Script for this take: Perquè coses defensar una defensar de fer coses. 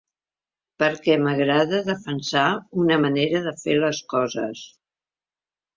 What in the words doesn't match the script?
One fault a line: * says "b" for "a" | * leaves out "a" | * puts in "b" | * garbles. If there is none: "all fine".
* says "m'agrada" for "coses"
* says "manera" for "defensar"
* puts in "les"